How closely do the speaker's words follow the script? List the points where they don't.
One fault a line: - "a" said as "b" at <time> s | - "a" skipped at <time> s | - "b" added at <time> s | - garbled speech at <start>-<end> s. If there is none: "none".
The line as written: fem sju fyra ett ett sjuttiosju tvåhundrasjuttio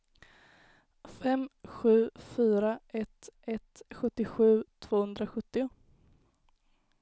none